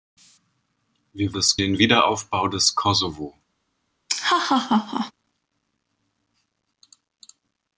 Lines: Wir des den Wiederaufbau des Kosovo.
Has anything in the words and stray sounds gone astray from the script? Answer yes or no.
yes